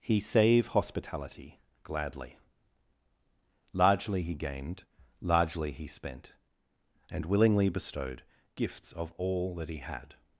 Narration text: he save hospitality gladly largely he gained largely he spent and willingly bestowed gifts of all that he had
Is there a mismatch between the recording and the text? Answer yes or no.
no